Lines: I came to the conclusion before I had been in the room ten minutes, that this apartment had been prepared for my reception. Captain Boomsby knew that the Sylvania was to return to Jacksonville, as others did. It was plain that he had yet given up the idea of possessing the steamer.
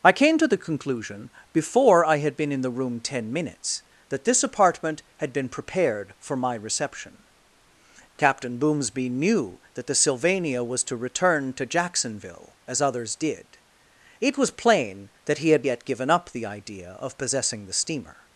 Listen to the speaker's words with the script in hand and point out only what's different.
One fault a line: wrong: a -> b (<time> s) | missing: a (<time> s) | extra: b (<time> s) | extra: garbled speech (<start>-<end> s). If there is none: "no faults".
no faults